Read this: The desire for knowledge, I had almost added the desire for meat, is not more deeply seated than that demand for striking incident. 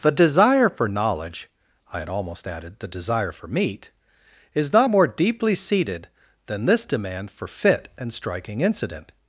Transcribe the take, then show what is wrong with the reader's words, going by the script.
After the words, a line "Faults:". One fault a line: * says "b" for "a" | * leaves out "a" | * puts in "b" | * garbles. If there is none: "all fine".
The desire for knowledge, I had almost added the desire for meat, is not more deeply seated than this demand for fit and striking incident.
Faults:
* says "this" for "that"
* puts in "fit and"